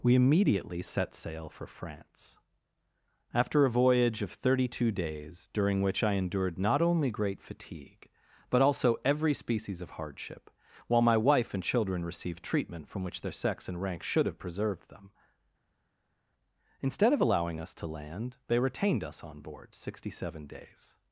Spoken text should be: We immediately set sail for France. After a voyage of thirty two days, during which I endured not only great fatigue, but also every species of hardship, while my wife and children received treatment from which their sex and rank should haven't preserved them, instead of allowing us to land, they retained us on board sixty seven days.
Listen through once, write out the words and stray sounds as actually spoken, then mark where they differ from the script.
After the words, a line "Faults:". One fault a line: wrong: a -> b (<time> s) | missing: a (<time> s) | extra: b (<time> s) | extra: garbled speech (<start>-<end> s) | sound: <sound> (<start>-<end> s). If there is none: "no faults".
We immediately set sail for France. After a voyage of thirty two days, during which I endured not only great fatigue, but also every species of hardship, while my wife and children received treatment from which their sex and rank should have preserved them, instead of allowing us to land, they retained us on board sixty seven days.
Faults:
wrong: haven't -> have (14.2 s)